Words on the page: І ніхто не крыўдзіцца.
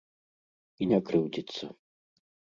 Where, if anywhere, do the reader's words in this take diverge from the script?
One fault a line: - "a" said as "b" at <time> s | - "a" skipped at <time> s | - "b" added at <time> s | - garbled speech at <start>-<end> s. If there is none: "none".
- "ніхто" skipped at 0.9 s